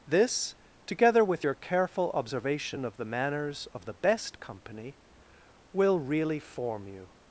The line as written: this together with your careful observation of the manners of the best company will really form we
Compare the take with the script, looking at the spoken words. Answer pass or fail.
fail